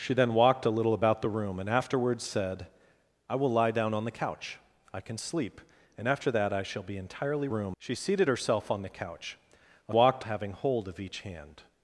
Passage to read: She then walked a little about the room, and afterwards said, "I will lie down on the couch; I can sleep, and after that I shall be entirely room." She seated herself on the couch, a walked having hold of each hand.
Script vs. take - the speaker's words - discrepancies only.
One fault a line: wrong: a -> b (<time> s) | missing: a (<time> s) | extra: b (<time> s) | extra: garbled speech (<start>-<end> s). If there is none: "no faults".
no faults